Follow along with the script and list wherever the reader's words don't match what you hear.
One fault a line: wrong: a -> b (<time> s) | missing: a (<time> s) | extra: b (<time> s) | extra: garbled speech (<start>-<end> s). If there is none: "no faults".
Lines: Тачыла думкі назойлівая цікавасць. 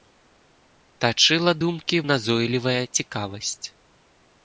no faults